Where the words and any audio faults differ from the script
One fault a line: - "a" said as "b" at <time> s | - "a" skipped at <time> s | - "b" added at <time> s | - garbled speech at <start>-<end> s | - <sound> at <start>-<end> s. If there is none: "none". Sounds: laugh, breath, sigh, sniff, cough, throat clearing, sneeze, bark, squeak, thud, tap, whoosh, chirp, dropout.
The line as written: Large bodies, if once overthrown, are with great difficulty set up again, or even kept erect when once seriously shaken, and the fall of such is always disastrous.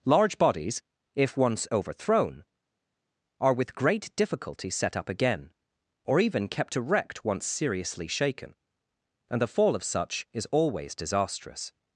- "when" skipped at 7.2 s